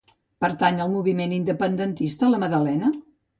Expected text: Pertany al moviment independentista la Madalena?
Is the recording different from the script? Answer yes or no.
no